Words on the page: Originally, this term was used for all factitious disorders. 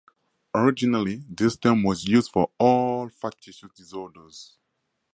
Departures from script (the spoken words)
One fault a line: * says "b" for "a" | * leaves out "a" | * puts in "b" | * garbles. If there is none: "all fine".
all fine